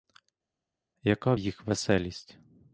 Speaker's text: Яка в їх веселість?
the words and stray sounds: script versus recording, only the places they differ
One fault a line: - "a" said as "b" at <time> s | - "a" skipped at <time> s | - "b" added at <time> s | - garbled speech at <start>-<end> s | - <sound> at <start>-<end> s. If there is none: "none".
none